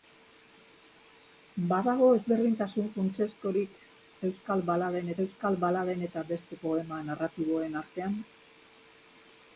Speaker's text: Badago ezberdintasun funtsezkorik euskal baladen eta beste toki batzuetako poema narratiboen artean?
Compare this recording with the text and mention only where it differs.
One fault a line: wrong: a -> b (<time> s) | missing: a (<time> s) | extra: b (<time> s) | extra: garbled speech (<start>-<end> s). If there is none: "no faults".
extra: euskal baladen (5.3 s)
missing: toki batzuetako (6.6 s)